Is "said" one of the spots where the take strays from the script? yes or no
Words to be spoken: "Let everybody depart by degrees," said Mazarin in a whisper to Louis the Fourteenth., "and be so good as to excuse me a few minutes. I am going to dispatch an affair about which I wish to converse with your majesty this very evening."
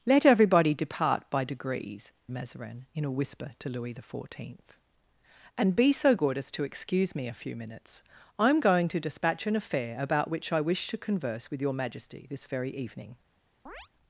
yes